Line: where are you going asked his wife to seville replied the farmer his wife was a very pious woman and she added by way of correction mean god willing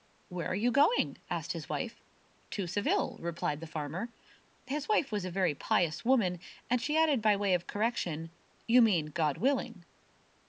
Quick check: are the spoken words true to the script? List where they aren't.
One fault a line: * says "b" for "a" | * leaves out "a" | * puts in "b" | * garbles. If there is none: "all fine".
* puts in "you"